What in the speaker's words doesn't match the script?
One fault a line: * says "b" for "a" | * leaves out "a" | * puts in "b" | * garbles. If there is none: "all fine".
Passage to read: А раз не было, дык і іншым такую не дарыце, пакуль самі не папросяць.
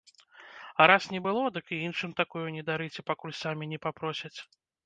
all fine